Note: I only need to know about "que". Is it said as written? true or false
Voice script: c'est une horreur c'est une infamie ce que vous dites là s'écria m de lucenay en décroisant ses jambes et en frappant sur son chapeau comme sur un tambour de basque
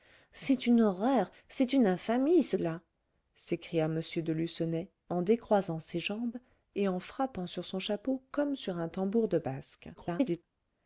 false